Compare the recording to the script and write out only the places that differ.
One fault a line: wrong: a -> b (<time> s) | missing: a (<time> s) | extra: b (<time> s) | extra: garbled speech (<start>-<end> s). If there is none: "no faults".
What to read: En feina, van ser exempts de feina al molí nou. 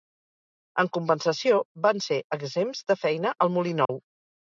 wrong: feina -> compensació (0.9 s)